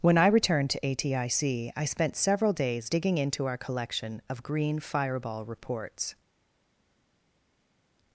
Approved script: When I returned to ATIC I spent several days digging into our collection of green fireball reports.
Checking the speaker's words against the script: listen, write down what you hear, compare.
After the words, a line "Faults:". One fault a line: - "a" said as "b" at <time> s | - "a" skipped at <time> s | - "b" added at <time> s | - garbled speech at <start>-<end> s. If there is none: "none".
When I returned to ATIC I spent several days digging into our collection of green fireball reports.
Faults:
none